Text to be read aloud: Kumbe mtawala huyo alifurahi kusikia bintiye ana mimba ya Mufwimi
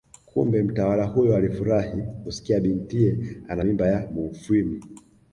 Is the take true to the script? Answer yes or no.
yes